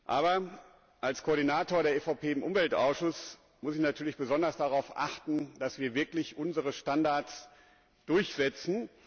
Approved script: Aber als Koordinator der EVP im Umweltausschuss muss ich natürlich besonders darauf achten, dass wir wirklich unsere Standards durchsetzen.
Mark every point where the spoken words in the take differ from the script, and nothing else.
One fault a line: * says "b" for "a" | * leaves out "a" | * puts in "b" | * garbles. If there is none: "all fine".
all fine